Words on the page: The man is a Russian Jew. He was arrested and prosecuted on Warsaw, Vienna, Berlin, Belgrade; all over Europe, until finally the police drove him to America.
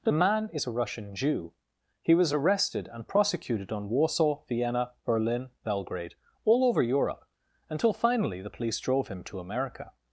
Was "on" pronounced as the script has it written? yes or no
yes